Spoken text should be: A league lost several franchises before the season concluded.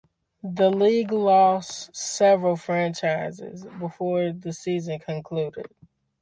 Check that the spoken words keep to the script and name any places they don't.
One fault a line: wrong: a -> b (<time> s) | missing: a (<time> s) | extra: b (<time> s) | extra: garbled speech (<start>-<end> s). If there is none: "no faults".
wrong: A -> The (0.4 s)